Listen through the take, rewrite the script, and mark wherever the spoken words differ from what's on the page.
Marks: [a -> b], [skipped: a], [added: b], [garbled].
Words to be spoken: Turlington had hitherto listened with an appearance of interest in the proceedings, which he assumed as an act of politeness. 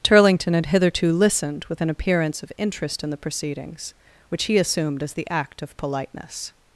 Turlington had hitherto listened with an appearance of interest in the proceedings, which he assumed as [an -> the] act of politeness.